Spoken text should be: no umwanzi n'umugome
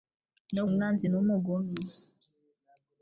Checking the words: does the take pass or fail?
pass